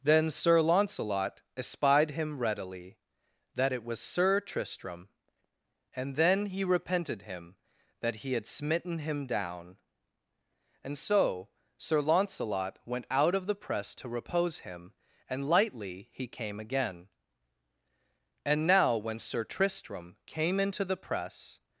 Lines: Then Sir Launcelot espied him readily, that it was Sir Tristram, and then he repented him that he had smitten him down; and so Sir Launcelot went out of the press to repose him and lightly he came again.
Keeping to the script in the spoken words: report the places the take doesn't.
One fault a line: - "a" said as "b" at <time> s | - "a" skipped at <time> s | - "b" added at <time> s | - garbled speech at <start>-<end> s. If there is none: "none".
- "And now when Sir Tristram came into the press" added at 18.4 s